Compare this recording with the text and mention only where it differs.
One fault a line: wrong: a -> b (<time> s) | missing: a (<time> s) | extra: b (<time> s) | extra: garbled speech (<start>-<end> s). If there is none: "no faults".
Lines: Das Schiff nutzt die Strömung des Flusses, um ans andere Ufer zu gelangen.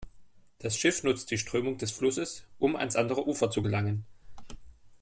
no faults